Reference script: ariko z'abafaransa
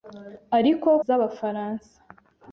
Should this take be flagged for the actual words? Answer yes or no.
no